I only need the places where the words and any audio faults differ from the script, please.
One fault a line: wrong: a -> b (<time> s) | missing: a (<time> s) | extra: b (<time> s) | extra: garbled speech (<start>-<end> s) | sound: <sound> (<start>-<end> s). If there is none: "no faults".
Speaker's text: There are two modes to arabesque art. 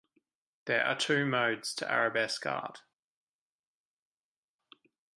no faults